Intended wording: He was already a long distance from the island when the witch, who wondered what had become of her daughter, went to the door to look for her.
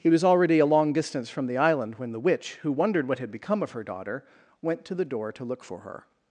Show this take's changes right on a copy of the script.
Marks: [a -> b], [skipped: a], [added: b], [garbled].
He was already a long distance from the island when the witch, who wondered what had become of her daughter, went to the door to look for her.